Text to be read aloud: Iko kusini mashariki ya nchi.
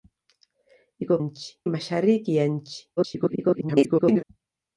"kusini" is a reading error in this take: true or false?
true